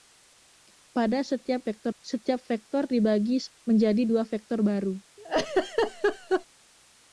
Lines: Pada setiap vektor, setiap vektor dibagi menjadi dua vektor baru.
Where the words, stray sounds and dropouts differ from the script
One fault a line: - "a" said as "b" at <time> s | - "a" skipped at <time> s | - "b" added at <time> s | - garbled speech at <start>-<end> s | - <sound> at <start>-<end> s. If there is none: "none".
- laugh at 5.2-6.5 s